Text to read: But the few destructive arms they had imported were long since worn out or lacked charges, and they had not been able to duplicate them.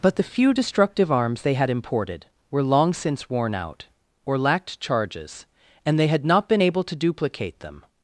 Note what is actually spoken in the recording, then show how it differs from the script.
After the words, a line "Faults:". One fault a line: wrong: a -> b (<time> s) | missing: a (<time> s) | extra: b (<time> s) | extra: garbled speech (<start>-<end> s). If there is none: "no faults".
But the few destructive arms they had imported were long since worn out or lacked charges, and they had not been able to duplicate them.
Faults:
no faults